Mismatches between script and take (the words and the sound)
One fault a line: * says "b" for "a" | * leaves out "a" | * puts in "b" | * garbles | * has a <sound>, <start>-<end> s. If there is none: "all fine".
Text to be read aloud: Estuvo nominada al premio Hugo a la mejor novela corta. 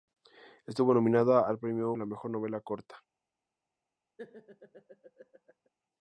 * leaves out "Hugo"
* has a laugh, 4.2-5.7 s